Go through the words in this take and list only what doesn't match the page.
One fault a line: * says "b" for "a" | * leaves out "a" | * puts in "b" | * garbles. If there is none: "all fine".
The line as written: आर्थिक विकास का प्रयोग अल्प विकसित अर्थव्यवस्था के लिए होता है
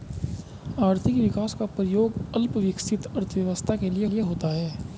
* puts in "लिए"